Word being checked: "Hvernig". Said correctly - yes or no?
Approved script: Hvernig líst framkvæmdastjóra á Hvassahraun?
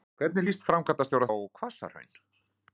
yes